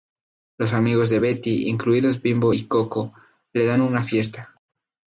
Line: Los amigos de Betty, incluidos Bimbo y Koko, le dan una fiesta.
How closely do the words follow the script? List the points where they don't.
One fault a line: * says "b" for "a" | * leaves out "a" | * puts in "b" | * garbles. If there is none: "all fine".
all fine